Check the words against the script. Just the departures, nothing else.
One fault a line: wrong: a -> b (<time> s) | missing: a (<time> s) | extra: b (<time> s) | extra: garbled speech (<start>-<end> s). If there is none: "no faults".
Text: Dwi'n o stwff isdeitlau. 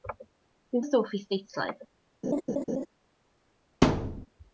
no faults